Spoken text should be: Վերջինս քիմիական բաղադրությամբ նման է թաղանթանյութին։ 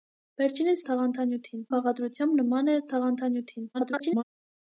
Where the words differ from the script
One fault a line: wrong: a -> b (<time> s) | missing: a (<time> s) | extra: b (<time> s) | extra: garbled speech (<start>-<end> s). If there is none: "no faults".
wrong: քիմիական -> թաղանթանյութին (0.9 s)
extra: garbled speech (3.7-4.2 s)